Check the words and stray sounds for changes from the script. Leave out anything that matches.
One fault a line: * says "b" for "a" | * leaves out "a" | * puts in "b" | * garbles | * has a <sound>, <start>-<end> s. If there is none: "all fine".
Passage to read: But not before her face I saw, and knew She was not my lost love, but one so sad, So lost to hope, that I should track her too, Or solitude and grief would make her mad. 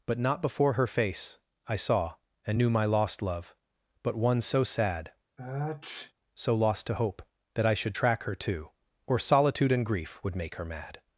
* leaves out "She was not"
* has a sniff, 5.4-6.1 s